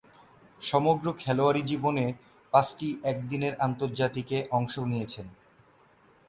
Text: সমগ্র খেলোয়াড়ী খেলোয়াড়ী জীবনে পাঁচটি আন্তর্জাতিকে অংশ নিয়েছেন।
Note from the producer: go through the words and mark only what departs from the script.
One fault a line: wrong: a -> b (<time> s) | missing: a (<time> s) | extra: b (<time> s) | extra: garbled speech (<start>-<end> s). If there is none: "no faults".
missing: খেলোয়াড়ী (1.6 s)
extra: একদিনের (3.0 s)